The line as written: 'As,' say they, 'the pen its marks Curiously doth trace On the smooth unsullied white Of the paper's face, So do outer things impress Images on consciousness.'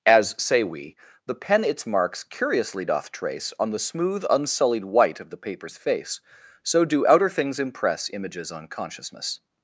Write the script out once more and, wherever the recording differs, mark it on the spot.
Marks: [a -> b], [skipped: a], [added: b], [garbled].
'As,' say [they, -> we] 'the pen its marks Curiously doth trace On the smooth unsullied white Of the paper's face, So do outer things impress Images on consciousness.'